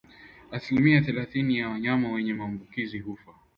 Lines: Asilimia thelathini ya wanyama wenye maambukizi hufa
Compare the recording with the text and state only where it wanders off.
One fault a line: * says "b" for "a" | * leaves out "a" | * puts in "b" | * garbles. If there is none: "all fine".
all fine